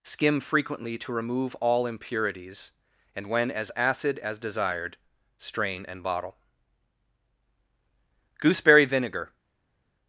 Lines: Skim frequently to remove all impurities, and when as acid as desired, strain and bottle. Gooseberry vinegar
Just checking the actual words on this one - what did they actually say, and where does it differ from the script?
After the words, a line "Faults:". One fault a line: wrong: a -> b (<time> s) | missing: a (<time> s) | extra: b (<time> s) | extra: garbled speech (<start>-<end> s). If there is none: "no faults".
Skim frequently to remove all impurities, and when as acid as desired, strain and bottle. Gooseberry vinegar
Faults:
no faults